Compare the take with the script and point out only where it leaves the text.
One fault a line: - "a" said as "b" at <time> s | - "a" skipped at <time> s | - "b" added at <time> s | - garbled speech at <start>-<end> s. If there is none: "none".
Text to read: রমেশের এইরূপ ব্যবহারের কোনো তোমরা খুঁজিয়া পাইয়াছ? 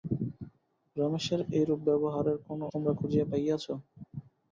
none